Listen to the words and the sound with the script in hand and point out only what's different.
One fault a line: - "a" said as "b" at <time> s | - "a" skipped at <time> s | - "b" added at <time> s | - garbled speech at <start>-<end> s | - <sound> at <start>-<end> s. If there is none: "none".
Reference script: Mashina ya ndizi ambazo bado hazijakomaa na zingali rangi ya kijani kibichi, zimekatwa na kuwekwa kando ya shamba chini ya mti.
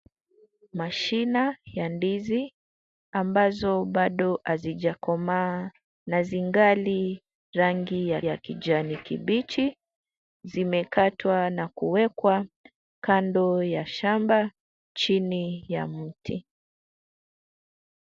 - "ya" added at 8.2 s